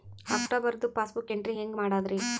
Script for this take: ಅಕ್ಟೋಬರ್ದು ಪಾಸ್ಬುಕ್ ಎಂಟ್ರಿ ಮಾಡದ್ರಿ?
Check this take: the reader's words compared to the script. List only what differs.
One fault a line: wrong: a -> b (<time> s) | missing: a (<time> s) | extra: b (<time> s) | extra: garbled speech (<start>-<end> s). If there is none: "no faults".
extra: ಹೆಂಗ್ (1.5 s)